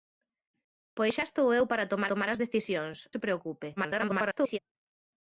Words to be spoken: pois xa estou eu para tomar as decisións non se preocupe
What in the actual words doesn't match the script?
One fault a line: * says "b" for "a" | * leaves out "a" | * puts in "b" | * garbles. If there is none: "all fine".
* puts in "tomar"
* leaves out "non"
* garbles